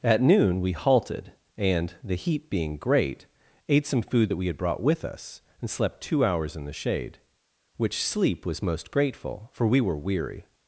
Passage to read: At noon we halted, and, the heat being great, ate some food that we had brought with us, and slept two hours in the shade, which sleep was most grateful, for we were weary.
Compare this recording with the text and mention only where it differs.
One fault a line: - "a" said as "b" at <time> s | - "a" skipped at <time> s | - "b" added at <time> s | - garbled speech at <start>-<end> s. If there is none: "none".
none